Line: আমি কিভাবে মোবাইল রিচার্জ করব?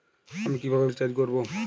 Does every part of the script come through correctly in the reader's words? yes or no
no